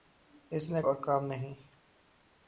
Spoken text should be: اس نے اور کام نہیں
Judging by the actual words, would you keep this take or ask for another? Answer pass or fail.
pass